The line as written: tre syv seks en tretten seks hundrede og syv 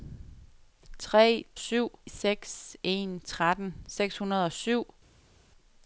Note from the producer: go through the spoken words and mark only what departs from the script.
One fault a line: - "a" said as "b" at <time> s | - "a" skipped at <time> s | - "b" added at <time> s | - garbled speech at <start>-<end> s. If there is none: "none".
none